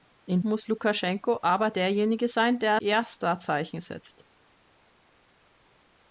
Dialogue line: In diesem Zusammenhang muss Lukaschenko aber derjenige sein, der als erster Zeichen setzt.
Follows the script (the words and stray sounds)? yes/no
no